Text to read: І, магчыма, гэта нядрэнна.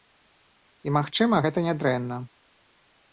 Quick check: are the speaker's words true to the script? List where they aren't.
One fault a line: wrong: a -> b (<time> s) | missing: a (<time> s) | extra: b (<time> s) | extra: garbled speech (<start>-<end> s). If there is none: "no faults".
no faults